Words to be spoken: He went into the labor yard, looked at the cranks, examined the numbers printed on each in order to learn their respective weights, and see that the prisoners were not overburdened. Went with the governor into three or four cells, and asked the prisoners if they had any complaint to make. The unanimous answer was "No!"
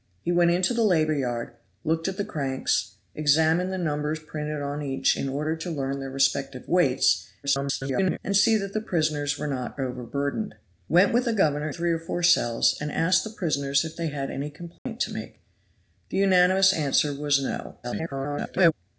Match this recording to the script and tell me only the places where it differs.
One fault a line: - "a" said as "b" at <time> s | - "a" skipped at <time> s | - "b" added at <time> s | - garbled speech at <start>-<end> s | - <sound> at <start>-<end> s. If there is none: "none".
- garbled speech at 7.4-8.2 s
- "into" skipped at 11.7 s
- dropout at 14.8-14.9 s
- garbled speech at 17.8-18.7 s